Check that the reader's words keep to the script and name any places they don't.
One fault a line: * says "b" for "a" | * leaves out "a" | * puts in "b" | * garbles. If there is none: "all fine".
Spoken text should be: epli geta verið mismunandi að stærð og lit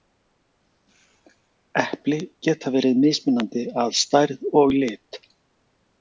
all fine